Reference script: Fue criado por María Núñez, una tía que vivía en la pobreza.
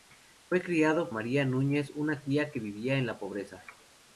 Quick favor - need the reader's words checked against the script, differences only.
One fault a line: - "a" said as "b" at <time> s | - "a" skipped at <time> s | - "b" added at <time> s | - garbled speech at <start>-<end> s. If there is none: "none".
- "por" skipped at 1.1 s